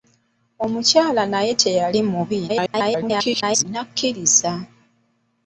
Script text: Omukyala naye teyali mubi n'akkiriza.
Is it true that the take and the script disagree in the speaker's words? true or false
true